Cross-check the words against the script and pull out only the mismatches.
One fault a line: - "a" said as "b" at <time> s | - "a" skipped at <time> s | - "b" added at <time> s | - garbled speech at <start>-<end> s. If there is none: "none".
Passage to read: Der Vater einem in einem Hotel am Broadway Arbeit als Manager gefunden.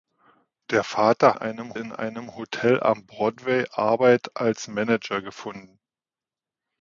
none